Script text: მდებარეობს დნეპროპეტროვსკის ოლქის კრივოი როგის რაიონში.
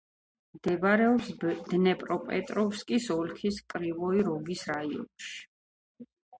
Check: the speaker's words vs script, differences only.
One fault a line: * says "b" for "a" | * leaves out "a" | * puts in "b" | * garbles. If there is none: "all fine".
all fine